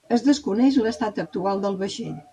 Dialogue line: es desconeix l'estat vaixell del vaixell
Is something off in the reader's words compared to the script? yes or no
yes